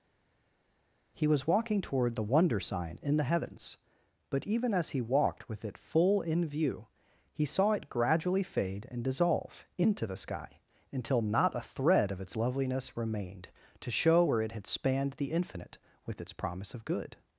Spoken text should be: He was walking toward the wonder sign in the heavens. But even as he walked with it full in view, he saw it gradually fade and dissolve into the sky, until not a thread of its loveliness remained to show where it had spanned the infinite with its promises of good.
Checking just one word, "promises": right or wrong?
wrong